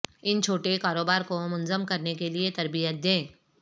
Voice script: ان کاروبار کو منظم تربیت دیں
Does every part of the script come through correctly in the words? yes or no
no